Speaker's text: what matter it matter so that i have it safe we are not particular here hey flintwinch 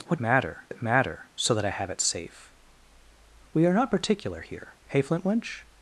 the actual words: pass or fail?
pass